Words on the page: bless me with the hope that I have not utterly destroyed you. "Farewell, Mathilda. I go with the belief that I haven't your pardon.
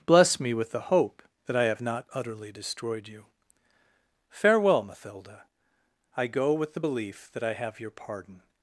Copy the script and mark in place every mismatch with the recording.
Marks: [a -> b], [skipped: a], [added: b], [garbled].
bless me with the hope that I have not utterly destroyed you. "Farewell, Mathilda. I go with the belief that I [haven't -> have] your pardon.